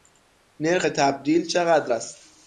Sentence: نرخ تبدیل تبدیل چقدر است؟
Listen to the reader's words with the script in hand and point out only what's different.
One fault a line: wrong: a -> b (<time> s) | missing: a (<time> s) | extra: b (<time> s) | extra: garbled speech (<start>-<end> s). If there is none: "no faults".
missing: تبدیل (1.5 s)